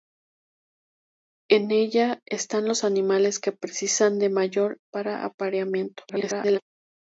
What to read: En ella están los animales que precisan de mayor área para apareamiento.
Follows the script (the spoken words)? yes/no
no